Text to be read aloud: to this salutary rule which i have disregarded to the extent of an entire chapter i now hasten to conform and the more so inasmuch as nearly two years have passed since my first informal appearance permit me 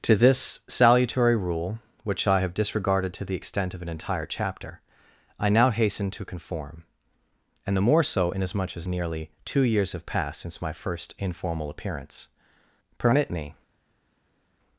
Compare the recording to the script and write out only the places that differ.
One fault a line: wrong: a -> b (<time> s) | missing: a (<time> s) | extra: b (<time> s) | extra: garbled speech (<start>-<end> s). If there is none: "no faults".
no faults